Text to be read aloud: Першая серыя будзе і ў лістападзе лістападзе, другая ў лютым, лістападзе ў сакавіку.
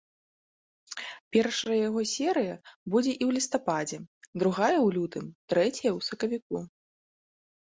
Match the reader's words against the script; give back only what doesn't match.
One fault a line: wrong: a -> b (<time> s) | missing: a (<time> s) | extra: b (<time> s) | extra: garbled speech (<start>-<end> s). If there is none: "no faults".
extra: яго (1.9 s)
missing: лістападзе (4.0 s)
wrong: лістападзе -> трэцяя (5.5 s)